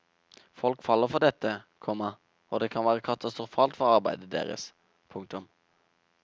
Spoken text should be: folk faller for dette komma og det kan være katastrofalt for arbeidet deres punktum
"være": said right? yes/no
yes